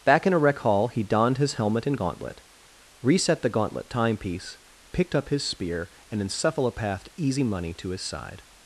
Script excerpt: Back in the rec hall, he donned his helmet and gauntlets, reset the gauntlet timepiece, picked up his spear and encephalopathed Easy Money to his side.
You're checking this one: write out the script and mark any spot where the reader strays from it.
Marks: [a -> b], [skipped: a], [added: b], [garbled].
Back in [the -> a] rec hall, he donned his helmet and [gauntlets, -> gauntlet] reset the gauntlet timepiece, picked up his spear and encephalopathed Easy Money to his side.